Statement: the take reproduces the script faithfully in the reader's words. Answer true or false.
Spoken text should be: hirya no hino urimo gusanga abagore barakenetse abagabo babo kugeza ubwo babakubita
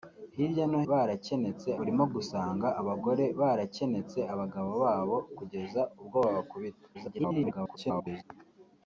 false